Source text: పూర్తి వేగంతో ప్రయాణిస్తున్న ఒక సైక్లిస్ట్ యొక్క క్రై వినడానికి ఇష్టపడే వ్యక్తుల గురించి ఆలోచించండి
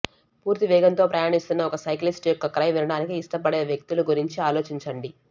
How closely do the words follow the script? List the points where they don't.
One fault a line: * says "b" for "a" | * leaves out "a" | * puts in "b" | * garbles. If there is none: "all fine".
all fine